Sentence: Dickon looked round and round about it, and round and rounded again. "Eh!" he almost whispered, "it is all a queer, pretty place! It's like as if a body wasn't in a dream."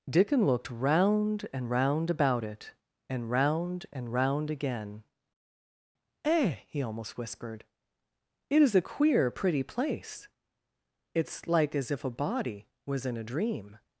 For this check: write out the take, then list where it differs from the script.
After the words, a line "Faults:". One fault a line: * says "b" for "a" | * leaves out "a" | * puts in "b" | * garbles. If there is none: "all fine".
Dickon looked round and round about it, and round and round again. "Eh!" he almost whispered, "it is a queer, pretty place! It's like as if a body was in a dream."
Faults:
* says "round" for "rounded"
* leaves out "all"
* says "was" for "wasn't"